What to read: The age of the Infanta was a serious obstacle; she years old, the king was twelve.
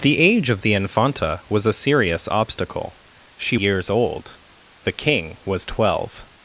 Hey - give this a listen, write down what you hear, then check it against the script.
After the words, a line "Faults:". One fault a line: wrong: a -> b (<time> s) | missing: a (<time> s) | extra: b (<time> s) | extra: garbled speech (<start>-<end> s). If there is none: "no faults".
The age of the Infanta was a serious obstacle; she years old, the king was twelve.
Faults:
no faults